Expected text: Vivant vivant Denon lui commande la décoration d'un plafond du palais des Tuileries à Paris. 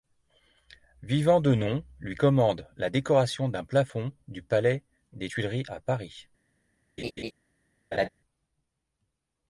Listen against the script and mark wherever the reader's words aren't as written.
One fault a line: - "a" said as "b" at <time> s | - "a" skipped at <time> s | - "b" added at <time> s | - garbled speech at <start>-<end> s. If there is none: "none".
- "vivant" skipped at 1.4 s